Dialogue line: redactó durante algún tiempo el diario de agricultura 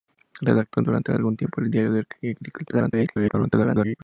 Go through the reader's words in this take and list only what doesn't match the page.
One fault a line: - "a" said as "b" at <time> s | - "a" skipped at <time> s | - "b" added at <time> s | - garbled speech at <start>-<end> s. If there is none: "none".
- garbled speech at 2.7-4.0 s